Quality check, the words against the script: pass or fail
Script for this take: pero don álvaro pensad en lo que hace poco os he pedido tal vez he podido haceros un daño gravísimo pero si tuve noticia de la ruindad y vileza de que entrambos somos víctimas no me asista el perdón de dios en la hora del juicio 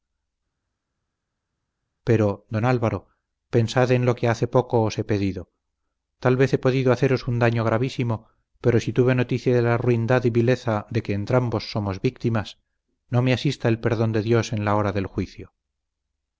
pass